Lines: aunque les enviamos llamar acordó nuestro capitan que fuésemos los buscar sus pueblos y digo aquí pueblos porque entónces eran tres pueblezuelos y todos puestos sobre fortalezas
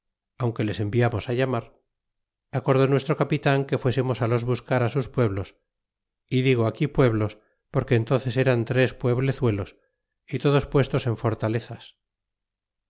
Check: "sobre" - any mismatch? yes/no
yes